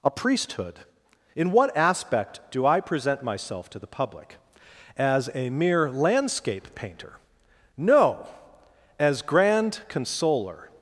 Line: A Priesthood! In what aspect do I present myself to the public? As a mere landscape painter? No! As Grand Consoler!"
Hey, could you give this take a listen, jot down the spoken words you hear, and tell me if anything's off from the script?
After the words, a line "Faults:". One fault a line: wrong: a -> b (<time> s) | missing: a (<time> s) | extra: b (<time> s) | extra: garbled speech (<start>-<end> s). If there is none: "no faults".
A Priesthood! In what aspect do I present myself to the public? As a mere landscape painter? No! As Grand Consoler!"
Faults:
no faults